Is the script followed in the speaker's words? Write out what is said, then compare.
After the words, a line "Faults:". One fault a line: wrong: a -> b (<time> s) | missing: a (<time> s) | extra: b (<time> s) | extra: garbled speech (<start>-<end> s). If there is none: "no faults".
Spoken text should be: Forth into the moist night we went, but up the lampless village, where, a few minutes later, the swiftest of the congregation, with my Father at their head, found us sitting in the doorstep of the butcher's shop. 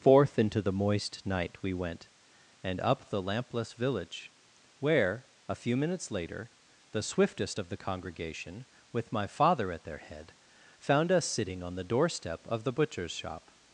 Forth into the moist night we went, and up the lampless village, where, a few minutes later, the swiftest of the congregation, with my Father at their head, found us sitting on the doorstep of the butcher's shop.
Faults:
wrong: but -> and (2.6 s)
wrong: in -> on (11.6 s)